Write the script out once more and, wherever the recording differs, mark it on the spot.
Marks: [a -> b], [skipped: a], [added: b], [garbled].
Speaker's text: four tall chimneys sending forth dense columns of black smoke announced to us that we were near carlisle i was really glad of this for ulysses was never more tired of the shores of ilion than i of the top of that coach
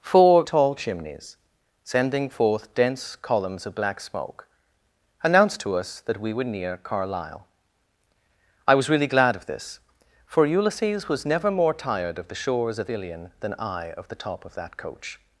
four tall chimneys sending forth dense columns of black smoke announced to us that we were near carlisle i was really glad of this for ulysses was never more tired of the shores of ilion than i of the top of that coach